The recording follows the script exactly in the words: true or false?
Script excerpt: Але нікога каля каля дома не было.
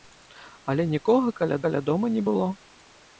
true